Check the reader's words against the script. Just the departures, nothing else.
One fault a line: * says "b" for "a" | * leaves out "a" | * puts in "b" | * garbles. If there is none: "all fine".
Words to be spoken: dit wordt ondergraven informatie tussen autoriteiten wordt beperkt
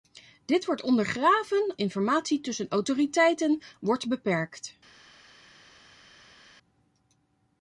all fine